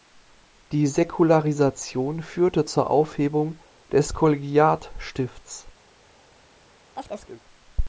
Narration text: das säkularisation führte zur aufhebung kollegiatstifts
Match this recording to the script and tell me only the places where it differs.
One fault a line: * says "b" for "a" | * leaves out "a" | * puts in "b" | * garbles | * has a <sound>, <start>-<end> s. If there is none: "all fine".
* says "die" for "das"
* puts in "des"
* has a chirp, 6.9-7.4 s